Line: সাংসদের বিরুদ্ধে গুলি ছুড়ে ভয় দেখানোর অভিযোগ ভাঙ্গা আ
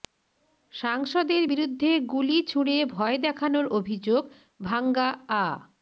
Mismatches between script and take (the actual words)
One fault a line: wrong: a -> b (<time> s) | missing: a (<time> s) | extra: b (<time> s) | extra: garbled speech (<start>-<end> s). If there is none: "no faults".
no faults